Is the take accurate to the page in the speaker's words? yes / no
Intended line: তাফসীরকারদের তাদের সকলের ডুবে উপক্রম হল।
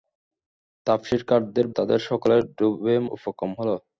yes